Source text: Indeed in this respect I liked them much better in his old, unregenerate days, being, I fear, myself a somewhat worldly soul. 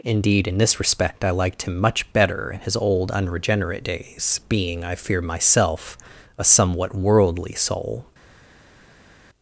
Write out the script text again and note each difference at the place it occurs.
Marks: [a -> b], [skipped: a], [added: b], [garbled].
Indeed in this respect I liked [them -> him] much better in his old, unregenerate days, being, I fear, myself a somewhat worldly soul.